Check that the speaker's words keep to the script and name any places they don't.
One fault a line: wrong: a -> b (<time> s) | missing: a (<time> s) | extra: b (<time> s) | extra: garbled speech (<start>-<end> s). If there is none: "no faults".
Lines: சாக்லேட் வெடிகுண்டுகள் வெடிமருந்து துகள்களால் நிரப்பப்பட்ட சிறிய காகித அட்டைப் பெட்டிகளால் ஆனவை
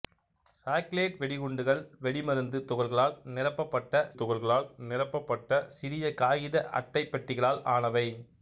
extra: துகள்களால் நிரப்பப்பட்ட (4.1 s)